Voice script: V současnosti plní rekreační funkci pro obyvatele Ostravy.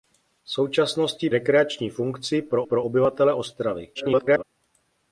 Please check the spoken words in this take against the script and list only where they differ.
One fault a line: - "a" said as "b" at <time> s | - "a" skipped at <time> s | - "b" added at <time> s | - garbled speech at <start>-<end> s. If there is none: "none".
- "plní" skipped at 1.3 s
- "pro" added at 2.6 s
- garbled speech at 3.9-4.4 s